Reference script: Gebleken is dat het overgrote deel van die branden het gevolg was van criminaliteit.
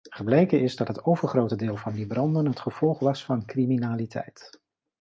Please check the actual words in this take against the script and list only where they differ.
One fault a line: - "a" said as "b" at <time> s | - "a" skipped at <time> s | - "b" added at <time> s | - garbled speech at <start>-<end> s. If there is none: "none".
none